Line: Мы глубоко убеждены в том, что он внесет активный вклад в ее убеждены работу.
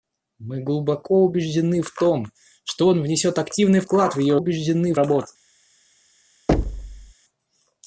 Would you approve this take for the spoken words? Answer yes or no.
yes